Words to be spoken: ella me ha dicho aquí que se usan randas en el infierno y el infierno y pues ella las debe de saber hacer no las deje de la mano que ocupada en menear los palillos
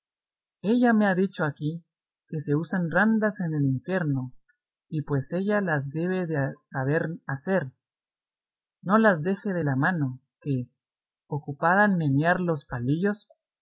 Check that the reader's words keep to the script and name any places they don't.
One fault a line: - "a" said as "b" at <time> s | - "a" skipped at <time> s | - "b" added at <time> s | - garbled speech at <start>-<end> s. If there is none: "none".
- "el infierno y" skipped at 5.0 s